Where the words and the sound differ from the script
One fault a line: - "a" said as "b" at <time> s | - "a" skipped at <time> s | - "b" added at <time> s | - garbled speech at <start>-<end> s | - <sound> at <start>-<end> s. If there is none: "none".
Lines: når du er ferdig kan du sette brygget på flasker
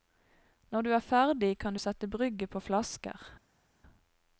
none